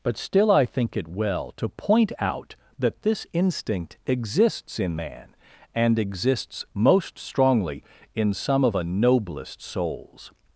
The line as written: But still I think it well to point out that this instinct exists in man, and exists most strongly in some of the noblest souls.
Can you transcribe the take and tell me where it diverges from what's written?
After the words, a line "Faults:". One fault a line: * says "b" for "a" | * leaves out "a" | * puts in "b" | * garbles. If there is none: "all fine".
But still I think it well to point out that this instinct exists in man, and exists most strongly in some of a noblest souls.
Faults:
* says "a" for "the"